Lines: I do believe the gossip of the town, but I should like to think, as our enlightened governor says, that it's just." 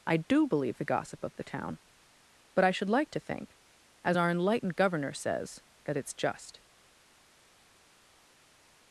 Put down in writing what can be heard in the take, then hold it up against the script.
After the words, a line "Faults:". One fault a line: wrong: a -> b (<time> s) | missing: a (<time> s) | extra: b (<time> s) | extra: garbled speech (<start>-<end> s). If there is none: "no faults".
I do believe the gossip of the town, but I should like to think, as our enlightened governor says, that it's just."
Faults:
no faults